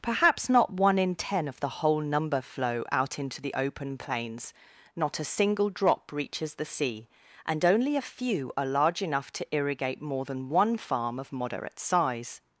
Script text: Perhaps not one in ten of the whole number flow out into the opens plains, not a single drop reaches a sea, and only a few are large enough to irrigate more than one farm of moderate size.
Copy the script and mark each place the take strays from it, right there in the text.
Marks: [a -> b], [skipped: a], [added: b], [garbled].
Perhaps not one in ten of the whole number flow out into the [opens -> open] plains, not a single drop reaches [a -> the] sea, and only a few are large enough to irrigate more than one farm of moderate size.